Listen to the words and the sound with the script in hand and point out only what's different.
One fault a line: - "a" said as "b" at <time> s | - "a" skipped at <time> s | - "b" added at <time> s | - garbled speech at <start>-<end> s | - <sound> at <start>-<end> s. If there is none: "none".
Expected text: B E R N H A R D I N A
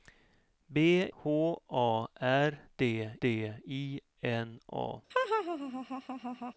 - "E R N" skipped at 1.1 s
- "D" added at 3.2 s
- laugh at 5.1-6.5 s